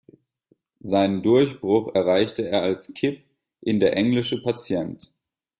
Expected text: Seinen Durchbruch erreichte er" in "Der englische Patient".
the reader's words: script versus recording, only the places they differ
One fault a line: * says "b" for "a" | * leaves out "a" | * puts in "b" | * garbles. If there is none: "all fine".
* puts in "als Kip"